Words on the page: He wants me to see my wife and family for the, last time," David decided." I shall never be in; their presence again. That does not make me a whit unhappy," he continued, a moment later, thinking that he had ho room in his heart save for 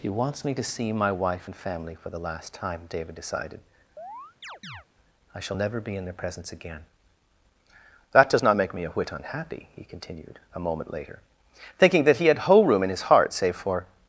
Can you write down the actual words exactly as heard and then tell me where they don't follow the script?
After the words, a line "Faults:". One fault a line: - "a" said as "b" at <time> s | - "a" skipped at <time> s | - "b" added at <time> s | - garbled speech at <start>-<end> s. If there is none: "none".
He wants me to see my wife and family for the, last time," David decided." I shall never be in; their presence again. That does not make me a whit unhappy," he continued, a moment later, thinking that he had whole room in his heart save for
Faults:
- "ho" said as "whole" at 12.4 s